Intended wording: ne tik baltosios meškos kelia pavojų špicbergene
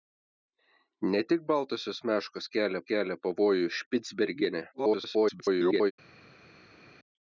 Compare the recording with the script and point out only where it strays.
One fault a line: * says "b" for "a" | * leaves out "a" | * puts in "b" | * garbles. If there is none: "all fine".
* puts in "kelia"
* garbles